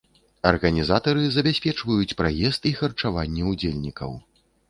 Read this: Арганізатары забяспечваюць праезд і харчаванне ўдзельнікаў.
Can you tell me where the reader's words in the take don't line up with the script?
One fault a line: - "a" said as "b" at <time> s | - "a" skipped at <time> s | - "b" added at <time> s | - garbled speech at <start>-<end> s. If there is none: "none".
none